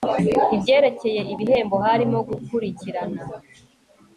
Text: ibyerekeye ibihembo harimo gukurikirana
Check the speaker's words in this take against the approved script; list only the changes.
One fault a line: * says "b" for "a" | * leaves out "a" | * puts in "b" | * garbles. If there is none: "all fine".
all fine